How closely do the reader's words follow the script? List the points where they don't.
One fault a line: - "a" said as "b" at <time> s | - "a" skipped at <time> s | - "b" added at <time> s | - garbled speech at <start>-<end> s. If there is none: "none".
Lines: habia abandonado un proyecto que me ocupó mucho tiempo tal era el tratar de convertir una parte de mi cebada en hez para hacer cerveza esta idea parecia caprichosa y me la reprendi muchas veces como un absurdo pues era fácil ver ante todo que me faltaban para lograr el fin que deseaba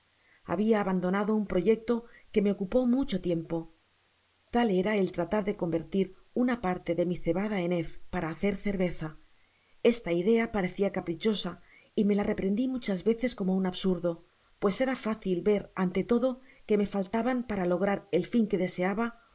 none